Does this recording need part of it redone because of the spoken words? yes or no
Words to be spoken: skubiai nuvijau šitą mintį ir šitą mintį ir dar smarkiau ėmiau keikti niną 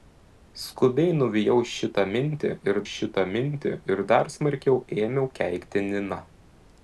no